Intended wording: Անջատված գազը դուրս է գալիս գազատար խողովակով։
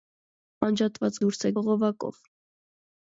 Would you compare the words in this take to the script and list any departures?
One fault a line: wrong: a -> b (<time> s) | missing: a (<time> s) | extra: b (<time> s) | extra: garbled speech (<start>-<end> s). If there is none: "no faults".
missing: գազը (1.2 s)
missing: գալիս գազատար (1.5 s)